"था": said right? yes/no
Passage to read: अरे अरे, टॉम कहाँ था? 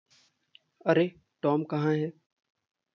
no